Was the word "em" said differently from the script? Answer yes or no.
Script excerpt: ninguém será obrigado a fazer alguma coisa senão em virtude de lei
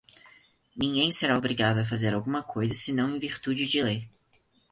no